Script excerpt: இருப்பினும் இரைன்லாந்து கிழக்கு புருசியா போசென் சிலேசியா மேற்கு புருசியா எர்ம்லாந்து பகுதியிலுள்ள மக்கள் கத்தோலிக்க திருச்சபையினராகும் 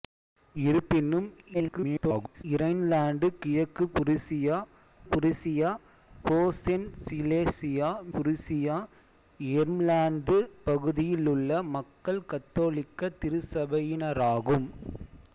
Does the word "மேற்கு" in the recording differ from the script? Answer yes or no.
yes